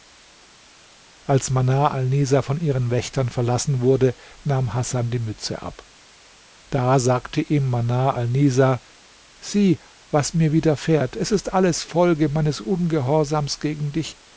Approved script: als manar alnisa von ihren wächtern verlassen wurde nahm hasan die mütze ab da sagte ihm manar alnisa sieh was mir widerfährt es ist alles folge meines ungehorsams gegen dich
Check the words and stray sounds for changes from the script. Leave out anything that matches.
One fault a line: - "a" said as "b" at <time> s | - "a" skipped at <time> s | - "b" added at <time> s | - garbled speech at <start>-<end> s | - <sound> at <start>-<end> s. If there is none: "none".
none